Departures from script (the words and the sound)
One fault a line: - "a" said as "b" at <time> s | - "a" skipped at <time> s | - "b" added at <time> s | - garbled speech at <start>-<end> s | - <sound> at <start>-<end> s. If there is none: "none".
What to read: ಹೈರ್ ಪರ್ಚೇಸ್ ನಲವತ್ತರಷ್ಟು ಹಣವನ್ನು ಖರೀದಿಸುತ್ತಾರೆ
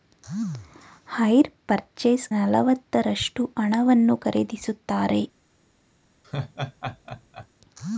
- laugh at 6.2-7.5 s